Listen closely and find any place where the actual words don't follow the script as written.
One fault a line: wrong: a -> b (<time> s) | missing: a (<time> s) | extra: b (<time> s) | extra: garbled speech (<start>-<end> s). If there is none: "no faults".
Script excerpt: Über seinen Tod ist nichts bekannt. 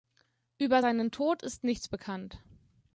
no faults